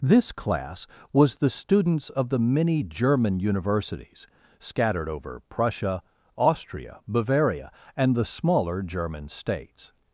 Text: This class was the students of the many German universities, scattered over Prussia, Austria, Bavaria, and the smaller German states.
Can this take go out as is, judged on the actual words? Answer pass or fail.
pass